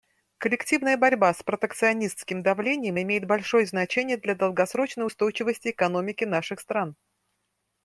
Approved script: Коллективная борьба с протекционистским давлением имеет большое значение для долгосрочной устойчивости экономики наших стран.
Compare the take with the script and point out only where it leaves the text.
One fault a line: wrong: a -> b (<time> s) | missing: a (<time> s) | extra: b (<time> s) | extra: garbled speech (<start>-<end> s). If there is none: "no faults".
no faults